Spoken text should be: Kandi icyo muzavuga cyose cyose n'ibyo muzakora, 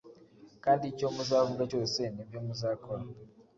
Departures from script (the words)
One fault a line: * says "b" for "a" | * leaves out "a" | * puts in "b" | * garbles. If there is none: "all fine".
* leaves out "cyose"